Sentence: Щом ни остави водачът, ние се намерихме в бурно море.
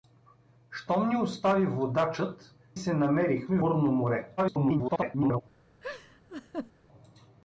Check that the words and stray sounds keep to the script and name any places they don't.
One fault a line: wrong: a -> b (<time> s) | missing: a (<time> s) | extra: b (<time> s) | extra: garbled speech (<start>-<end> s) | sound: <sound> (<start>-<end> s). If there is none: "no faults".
missing: ние (2.5 s)
missing: в (3.6 s)
extra: garbled speech (4.4-5.4 s)
sound: laugh (5.8-6.7 s)